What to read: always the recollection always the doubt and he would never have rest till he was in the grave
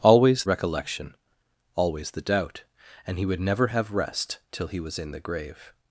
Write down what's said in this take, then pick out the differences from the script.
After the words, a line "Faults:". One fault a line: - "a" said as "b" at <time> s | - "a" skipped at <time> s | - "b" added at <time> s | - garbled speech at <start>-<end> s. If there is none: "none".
always recollection always the doubt and he would never have rest till he was in the grave
Faults:
- "the" skipped at 0.5 s